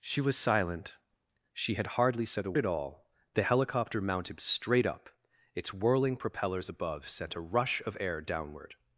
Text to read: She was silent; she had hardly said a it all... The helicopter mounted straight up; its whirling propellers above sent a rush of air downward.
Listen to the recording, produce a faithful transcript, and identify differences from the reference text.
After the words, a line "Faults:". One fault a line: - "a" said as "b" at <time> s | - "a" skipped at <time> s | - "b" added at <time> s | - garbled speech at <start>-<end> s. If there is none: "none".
She was silent; she had hardly said a it all... The helicopter mounted straight up; its whirling propellers above sent a rush of air downward.
Faults:
none